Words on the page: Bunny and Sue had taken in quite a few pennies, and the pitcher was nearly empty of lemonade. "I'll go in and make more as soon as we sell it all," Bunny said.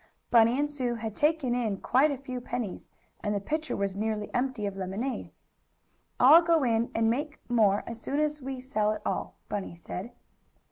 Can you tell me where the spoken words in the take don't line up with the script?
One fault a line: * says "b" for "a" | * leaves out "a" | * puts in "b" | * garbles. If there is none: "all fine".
all fine